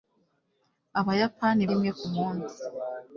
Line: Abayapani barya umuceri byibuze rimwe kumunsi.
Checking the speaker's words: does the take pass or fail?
fail